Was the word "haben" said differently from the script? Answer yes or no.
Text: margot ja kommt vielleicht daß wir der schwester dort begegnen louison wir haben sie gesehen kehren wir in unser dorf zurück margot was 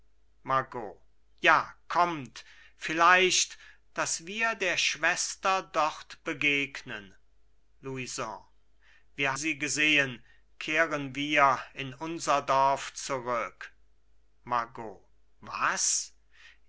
yes